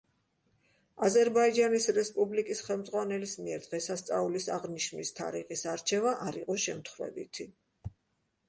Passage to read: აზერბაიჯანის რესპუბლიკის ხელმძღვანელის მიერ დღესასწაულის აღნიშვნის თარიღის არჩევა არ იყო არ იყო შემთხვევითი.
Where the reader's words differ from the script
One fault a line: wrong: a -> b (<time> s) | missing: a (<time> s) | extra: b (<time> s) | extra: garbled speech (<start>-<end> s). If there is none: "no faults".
missing: არ იყო (6.6 s)